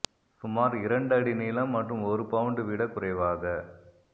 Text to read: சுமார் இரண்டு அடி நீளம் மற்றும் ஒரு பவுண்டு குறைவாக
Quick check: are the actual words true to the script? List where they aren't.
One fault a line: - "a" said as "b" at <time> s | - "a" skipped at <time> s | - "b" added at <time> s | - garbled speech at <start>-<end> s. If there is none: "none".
- "விட" added at 2.6 s